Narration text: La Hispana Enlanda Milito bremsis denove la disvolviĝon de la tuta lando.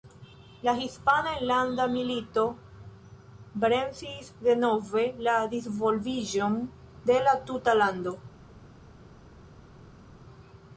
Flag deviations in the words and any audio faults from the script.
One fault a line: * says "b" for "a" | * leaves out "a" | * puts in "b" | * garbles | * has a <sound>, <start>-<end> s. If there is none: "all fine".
all fine